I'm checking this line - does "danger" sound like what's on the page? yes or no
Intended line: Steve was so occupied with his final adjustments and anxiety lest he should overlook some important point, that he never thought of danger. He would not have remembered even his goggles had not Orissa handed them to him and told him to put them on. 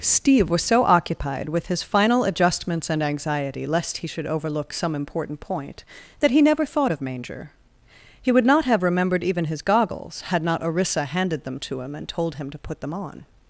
no